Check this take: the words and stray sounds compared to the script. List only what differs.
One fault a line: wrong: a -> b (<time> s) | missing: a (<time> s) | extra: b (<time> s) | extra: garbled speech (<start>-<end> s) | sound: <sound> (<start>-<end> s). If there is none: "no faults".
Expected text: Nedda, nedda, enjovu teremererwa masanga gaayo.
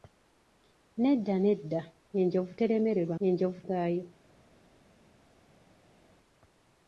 wrong: masanga -> enjovu (3.3 s)